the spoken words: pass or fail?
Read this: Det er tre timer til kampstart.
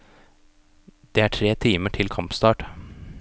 pass